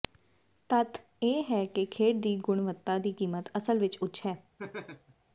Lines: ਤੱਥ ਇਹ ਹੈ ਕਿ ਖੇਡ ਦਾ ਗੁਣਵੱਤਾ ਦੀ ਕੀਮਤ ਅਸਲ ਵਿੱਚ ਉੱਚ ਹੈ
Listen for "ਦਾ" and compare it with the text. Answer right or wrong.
wrong